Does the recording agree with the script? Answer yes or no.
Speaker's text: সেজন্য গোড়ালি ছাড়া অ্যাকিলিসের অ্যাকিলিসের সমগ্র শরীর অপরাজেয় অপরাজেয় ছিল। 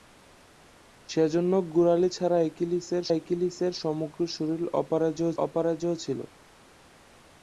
yes